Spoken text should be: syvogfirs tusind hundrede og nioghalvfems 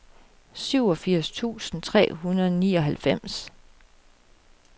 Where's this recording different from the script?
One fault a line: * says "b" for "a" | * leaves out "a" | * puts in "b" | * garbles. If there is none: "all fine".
* puts in "tre"